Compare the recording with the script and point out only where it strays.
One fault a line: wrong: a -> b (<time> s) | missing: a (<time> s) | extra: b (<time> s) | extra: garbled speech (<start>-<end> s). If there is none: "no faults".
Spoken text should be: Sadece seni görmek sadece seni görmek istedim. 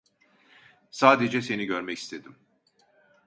missing: sadece seni görmek (2.0 s)